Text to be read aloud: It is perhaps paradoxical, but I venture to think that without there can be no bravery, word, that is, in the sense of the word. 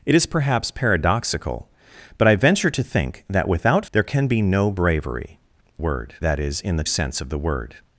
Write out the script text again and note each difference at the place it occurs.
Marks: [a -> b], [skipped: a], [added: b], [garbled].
It is perhaps paradoxical, but I venture to think that without there can be no bravery, word, that is, in the sense of the word.